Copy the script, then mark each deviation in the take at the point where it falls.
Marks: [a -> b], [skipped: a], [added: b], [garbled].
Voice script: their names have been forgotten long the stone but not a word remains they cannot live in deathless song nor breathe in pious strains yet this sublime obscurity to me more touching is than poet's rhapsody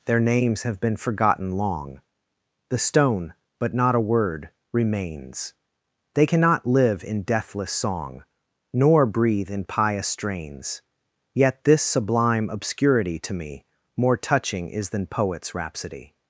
their names have been forgotten long the stone but not a word remains they cannot live in deathless song nor breathe in pious strains yet this sublime obscurity to me more touching is than poet's rhapsody